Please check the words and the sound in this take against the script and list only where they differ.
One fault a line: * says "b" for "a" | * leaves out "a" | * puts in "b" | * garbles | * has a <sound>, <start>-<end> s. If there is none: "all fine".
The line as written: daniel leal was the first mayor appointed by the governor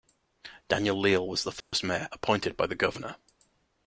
* has a dropout, 1.6-1.7 s